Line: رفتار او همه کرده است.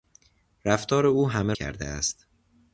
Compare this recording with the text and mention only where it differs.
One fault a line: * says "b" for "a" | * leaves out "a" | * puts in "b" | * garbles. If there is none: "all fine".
all fine